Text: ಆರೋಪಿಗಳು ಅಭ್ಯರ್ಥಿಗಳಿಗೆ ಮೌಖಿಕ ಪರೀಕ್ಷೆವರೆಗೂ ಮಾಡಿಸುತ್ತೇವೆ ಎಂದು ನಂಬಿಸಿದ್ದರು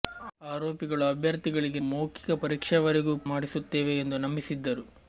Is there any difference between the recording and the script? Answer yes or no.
no